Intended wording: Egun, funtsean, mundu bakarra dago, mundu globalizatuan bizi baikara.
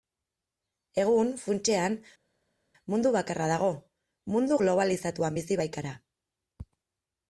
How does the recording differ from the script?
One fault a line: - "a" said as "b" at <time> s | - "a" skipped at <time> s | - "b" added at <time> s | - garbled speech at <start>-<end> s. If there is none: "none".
none